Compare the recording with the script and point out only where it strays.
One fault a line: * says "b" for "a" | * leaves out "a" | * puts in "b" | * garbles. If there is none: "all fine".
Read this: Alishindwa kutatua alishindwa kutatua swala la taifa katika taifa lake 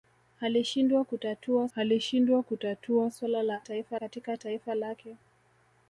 all fine